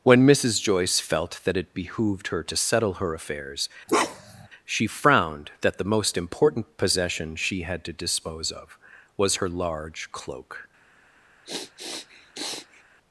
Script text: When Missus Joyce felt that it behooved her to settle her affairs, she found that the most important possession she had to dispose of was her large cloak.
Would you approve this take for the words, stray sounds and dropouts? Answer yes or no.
no